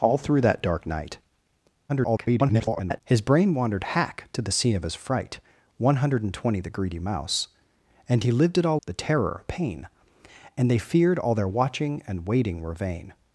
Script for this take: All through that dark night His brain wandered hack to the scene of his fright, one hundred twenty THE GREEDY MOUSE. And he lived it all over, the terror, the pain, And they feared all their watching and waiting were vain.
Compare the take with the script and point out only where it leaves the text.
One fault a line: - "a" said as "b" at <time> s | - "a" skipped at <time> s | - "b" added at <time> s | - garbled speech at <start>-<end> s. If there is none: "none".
- garbled speech at 1.9-3.0 s
- "over" skipped at 8.8 s
- "the" skipped at 9.4 s